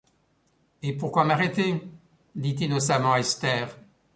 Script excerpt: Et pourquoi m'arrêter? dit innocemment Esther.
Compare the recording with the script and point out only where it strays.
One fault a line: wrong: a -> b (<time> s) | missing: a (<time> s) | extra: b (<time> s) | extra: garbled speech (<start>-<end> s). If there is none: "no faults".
no faults